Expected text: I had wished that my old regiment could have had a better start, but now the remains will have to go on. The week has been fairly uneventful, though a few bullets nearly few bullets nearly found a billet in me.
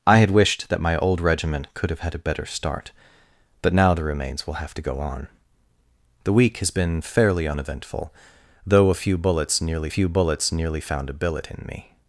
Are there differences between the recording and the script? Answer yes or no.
no